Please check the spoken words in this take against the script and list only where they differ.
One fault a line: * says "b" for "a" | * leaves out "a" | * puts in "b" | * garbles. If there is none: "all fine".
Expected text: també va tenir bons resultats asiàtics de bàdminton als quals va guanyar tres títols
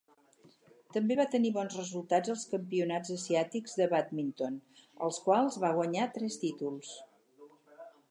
* puts in "als campionats"